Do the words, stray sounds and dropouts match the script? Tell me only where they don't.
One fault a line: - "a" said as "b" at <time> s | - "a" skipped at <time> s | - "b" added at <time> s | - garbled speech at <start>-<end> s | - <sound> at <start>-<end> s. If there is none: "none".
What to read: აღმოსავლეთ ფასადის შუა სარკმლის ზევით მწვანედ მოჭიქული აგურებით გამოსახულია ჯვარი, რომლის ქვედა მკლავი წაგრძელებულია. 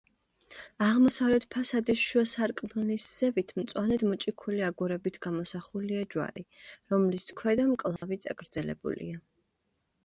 - dropout at 8.0-8.0 s